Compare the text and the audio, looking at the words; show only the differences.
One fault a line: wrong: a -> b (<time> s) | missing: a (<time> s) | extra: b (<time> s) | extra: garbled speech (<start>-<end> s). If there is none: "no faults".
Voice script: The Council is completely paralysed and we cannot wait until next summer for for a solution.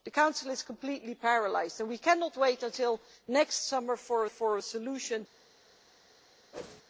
no faults